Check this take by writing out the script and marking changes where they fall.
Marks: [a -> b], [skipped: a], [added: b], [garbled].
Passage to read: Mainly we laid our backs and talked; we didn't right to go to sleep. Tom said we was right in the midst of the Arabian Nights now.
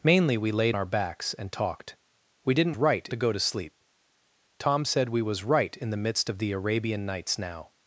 Mainly we laid our backs and talked; we didn't right to go to sleep. Tom said we was right in the midst of the Arabian Nights now.